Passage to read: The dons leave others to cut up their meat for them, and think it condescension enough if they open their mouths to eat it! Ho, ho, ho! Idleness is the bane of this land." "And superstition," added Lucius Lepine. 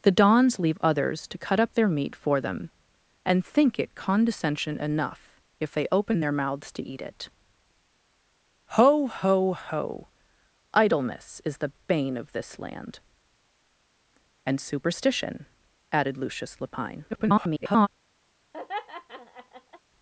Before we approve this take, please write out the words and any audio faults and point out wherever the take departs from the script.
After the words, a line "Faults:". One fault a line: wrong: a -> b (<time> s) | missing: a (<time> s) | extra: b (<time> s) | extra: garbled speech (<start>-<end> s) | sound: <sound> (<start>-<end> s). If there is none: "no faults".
The dons leave others to cut up their meat for them, and think it condescension enough if they open their mouths to eat it! Ho, ho, ho! Idleness is the bane of this land." "And superstition," added Lucius Lepine. [garbled]
Faults:
extra: garbled speech (17.1-17.9 s)
sound: laugh (18.5-19.8 s)